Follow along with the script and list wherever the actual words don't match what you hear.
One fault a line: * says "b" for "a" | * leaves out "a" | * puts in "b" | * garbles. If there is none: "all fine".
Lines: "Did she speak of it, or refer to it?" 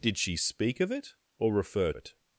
* leaves out "to"